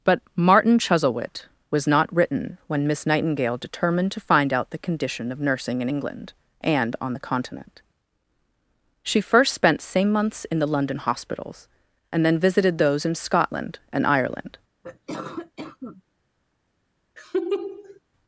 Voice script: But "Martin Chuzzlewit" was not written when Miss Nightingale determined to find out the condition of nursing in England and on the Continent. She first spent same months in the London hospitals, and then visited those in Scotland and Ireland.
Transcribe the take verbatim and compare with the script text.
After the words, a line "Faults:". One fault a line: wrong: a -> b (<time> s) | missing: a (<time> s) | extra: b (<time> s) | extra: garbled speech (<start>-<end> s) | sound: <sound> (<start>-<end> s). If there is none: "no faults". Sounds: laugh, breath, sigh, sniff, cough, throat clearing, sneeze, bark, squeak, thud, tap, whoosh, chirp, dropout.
But "Martin Chuzzlewit" was not written when Miss Nightingale determined to find out the condition of nursing in England and on the Continent. She first spent same months in the London hospitals, and then visited those in Scotland and Ireland.
Faults:
sound: cough (14.8-16.0 s)
sound: laugh (17.2-18.0 s)